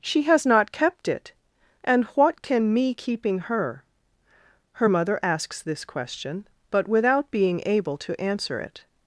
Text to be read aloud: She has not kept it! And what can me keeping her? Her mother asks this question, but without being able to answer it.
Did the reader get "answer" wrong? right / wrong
right